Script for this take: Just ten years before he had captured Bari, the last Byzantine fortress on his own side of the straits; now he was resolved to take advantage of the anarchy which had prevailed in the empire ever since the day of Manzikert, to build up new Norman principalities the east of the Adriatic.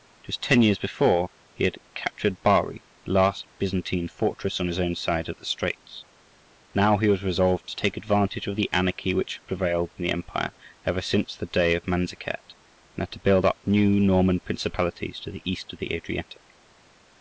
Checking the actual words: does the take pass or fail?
fail